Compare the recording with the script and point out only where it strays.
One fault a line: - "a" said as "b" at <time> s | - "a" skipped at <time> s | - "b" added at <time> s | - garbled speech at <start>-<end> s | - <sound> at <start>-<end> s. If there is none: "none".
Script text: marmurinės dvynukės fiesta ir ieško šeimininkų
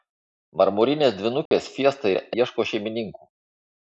- dropout at 1.5-1.5 s